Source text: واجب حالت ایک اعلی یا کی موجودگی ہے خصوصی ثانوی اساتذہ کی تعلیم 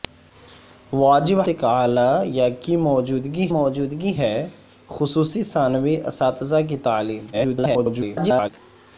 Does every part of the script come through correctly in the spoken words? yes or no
no